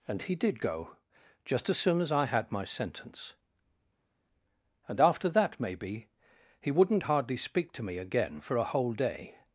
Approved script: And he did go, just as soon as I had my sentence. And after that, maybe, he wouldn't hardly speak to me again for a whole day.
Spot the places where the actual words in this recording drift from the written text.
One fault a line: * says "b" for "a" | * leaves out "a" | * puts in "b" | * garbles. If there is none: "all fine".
all fine